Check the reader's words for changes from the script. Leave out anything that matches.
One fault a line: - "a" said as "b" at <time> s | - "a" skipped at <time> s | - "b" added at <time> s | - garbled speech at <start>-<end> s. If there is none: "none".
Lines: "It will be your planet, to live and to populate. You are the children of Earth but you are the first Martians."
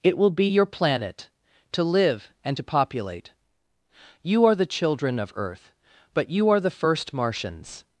none